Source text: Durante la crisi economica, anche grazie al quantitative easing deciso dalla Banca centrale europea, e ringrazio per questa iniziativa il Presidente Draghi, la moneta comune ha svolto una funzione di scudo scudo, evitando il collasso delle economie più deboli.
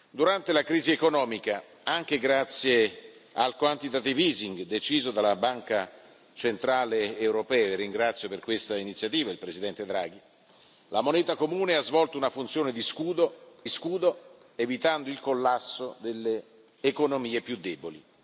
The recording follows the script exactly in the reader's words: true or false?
true